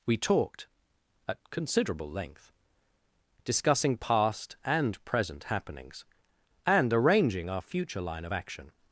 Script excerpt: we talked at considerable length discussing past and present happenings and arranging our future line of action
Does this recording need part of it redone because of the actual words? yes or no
no